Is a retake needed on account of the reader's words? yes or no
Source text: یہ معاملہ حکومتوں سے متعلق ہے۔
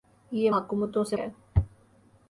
yes